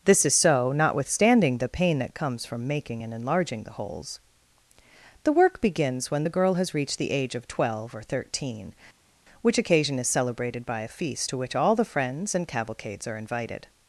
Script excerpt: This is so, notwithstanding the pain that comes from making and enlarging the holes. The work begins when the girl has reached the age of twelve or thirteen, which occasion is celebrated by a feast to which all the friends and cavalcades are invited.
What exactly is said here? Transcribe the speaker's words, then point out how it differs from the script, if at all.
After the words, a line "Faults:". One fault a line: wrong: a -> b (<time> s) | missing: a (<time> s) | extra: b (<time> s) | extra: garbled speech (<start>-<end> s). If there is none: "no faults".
This is so, notwithstanding the pain that comes from making and enlarging the holes. The work begins when the girl has reached the age of twelve or thirteen, which occasion is celebrated by a feast to which all the friends and cavalcades are invited.
Faults:
no faults